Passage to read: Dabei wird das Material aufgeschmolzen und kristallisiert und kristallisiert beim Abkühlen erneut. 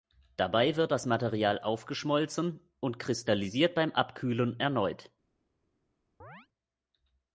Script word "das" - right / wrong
right